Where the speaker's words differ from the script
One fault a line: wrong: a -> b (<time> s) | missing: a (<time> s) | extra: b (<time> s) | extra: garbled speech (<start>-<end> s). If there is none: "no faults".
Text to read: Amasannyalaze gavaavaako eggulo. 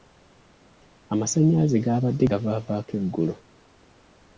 extra: gaabadde (1.9 s)